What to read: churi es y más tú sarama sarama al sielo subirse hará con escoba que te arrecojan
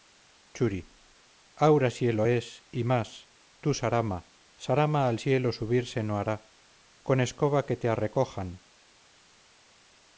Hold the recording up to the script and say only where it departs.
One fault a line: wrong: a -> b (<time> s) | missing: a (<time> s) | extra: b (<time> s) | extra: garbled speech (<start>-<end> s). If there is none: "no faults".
extra: aura sielo (1.7 s)
extra: no (6.0 s)